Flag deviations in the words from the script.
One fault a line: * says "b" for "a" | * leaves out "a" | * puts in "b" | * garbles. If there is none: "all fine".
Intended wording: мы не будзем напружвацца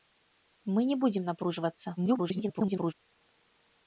* garbles